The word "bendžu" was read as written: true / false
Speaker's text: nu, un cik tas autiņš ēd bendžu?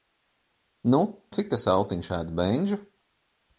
true